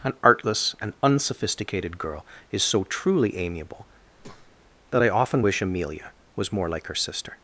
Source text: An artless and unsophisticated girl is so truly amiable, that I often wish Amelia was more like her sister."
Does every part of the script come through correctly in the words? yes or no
yes